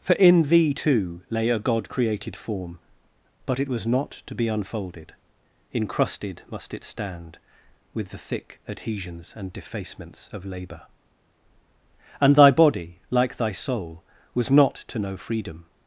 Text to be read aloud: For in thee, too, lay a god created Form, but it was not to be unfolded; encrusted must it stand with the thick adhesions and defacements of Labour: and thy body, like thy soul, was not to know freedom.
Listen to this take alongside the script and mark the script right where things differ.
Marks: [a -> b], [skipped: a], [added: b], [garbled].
For in thee, too, lay a god created Form, but it was not to be unfolded; encrusted must it stand with the thick adhesions and defacements of Labour: and thy body, like thy soul, was not to know freedom.